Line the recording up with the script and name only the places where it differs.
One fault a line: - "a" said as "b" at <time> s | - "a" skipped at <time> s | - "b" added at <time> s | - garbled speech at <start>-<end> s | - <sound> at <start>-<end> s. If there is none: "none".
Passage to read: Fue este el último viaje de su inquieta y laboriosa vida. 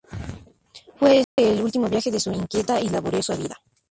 - dropout at 1.2-1.4 s